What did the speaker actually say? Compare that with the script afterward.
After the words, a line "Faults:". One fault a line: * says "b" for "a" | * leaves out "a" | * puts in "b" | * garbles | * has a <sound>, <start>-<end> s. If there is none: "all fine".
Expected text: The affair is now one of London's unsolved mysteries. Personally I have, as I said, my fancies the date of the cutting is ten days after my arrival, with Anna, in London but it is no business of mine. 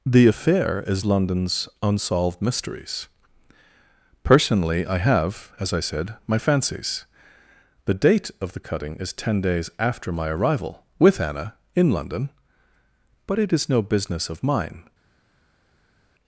The affair is London's unsolved mysteries. Personally I have, as I said, my fancies the date of the cutting is ten days after my arrival, with Anna, in London but it is no business of mine.
Faults:
* leaves out "now one of"